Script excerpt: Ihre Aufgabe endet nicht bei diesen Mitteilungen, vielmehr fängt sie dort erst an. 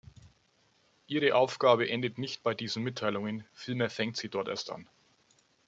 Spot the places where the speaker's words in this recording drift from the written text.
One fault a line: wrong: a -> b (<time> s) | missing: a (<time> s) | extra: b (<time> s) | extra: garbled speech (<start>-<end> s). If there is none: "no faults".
no faults